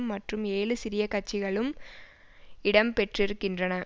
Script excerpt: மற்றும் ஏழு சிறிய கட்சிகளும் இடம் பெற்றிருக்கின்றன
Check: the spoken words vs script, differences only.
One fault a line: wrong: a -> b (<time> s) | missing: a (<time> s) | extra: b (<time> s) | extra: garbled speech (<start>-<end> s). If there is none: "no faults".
no faults